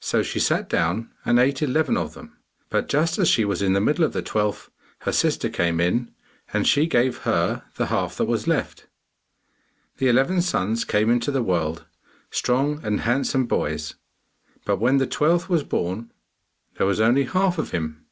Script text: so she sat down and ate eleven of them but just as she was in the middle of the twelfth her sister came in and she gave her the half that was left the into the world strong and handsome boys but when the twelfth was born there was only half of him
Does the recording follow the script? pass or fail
fail